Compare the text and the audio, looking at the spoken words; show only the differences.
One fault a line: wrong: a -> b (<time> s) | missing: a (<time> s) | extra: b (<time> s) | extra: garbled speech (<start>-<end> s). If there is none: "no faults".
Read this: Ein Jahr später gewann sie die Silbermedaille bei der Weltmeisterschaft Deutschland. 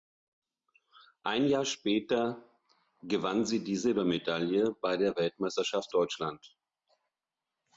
no faults